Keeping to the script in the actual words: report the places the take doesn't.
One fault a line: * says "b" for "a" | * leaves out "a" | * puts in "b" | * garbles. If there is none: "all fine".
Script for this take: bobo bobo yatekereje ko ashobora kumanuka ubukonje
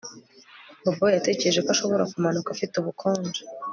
* leaves out "bobo"
* puts in "afite"